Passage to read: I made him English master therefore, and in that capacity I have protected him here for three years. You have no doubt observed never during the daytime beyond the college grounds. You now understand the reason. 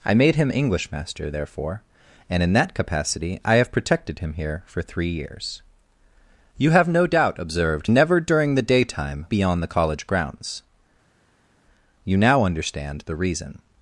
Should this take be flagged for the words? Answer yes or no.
no